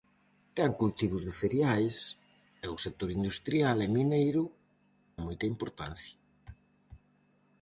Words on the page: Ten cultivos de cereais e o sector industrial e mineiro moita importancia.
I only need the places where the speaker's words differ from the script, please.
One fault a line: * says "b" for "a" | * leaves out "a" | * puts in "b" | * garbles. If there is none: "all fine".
all fine